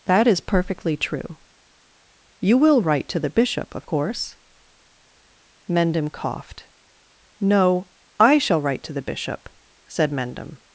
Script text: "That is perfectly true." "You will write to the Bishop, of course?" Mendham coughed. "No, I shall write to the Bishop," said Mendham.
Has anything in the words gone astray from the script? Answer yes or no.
no